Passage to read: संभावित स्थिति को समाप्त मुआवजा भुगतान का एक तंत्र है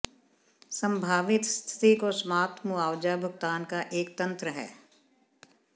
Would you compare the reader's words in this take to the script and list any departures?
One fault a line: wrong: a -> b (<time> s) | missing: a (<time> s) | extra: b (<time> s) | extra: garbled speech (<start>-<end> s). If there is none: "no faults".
no faults